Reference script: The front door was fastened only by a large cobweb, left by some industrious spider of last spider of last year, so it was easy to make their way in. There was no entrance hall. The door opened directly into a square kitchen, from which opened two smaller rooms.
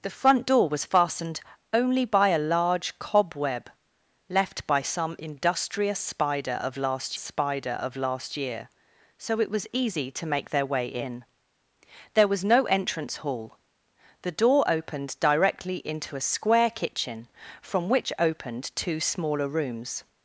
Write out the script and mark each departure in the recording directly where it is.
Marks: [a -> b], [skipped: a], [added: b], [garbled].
The front door was fastened only by a large cobweb, left by some industrious spider of last spider of last year, so it was easy to make their way in. There was no entrance hall. The door opened directly into a square kitchen, from which opened two smaller rooms.